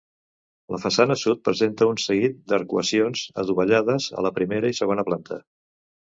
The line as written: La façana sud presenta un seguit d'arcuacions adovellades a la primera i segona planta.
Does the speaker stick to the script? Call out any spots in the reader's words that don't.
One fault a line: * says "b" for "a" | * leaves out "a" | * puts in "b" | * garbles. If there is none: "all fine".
all fine